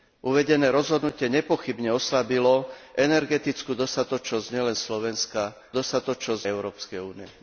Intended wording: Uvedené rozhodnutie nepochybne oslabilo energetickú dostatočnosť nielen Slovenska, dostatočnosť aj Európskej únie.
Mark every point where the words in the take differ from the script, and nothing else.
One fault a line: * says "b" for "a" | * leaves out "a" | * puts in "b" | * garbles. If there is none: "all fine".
all fine